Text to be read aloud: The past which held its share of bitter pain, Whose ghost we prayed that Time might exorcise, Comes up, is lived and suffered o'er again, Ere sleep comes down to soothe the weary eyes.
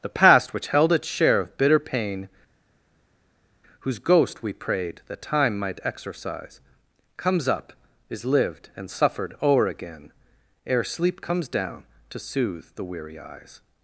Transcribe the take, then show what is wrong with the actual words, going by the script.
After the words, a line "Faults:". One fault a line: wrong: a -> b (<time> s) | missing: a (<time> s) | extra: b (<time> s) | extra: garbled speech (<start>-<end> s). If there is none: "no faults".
The past which held its share of bitter pain, Whose ghost we prayed that Time might exorcise, Comes up, is lived and suffered o'er again, Ere sleep comes down to soothe the weary eyes.
Faults:
no faults